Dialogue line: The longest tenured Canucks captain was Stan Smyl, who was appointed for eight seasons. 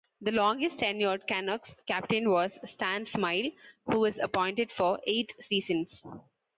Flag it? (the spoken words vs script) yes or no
no